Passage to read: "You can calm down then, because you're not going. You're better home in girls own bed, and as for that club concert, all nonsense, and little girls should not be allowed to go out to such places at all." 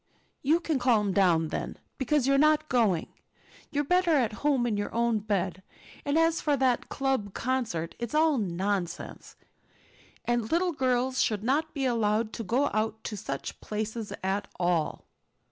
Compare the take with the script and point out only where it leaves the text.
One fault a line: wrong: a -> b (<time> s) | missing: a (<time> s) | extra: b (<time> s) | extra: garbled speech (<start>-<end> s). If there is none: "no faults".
extra: at (4.1 s)
wrong: girls -> your (4.8 s)
extra: it's (8.0 s)